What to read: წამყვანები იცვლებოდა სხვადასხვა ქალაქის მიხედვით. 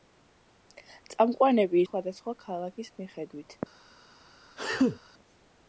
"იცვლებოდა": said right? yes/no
no